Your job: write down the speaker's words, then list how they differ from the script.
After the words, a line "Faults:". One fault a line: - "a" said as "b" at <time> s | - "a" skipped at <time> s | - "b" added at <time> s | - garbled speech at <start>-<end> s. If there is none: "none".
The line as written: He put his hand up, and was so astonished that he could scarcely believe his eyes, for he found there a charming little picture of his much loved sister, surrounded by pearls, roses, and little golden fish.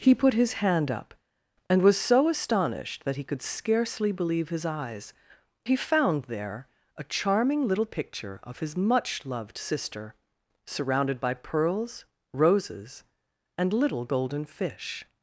He put his hand up, and was so astonished that he could scarcely believe his eyes, he found there a charming little picture of his much loved sister, surrounded by pearls, roses, and little golden fish.
Faults:
- "for" skipped at 5.1 s